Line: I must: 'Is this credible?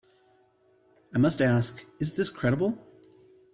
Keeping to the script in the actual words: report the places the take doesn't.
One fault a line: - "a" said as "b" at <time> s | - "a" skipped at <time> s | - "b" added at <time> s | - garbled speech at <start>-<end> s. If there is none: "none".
- "ask" added at 1.4 s